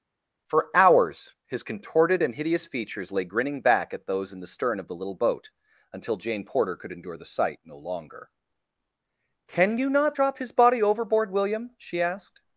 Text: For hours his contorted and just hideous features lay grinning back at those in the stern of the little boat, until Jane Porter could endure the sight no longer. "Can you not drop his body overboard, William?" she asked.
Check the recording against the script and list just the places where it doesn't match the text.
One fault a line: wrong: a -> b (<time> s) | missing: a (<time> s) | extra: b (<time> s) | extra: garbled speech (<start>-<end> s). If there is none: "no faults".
missing: just (2.3 s)